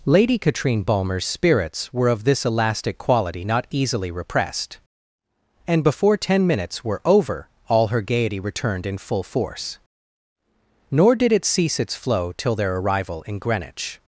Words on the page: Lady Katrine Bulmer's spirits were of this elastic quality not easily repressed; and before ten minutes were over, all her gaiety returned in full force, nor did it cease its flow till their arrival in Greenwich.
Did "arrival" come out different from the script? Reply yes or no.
no